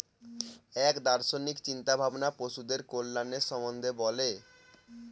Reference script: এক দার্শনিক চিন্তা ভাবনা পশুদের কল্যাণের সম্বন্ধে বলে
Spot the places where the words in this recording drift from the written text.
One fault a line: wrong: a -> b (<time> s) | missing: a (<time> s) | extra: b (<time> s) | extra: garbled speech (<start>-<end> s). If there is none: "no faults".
no faults